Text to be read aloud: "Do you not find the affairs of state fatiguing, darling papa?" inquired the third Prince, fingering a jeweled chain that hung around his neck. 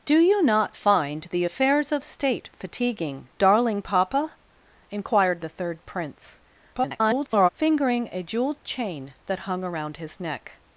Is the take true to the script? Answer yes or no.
no